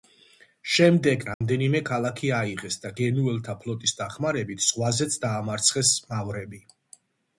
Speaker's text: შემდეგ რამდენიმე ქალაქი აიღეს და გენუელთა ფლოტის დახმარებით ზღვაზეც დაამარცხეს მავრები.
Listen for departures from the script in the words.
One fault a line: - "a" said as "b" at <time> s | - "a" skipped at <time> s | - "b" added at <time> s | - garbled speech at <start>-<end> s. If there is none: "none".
none